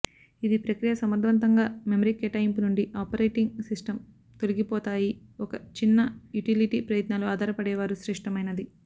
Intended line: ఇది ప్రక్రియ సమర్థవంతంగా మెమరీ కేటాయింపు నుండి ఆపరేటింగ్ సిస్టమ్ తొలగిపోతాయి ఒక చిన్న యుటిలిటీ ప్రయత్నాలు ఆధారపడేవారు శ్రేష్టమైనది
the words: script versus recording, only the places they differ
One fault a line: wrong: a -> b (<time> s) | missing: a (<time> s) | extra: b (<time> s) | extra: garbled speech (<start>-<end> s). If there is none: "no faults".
no faults